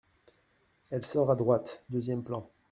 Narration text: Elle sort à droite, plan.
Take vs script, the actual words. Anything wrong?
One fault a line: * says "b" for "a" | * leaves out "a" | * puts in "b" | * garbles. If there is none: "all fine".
* puts in "deuxième"